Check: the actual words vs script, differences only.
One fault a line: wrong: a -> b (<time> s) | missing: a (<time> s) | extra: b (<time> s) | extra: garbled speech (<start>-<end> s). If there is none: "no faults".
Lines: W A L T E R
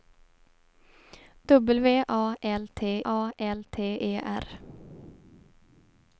extra: A L T (3.0 s)